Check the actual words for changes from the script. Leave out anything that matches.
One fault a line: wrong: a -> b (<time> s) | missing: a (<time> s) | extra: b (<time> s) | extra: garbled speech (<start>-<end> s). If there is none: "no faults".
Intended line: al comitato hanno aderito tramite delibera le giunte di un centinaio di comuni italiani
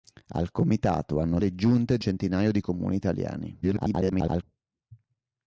missing: aderito tramite delibera (1.4 s)
missing: un (2.0 s)
extra: garbled speech (3.6-4.4 s)